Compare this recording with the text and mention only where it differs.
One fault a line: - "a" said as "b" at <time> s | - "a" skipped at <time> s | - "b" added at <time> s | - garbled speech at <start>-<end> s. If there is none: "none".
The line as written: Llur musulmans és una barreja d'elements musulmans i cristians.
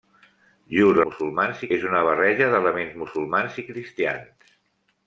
none